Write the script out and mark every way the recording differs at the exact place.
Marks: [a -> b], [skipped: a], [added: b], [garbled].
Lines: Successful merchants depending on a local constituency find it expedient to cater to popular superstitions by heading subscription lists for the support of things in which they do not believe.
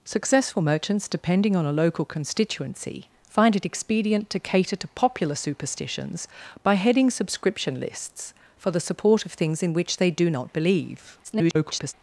Successful merchants depending on a local constituency find it expedient to cater to popular superstitions by heading subscription lists for the support of things in which they do not believe. [garbled]